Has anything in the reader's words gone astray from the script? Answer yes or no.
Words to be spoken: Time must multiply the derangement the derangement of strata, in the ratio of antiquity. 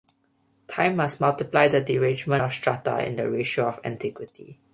yes